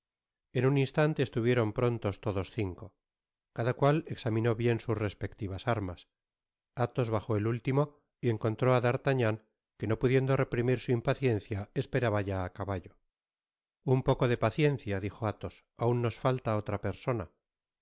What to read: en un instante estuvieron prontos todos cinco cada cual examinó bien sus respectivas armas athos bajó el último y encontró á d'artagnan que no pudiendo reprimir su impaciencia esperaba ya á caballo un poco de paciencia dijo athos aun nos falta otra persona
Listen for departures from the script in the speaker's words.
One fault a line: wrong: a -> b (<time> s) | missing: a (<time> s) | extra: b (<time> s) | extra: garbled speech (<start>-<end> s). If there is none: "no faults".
no faults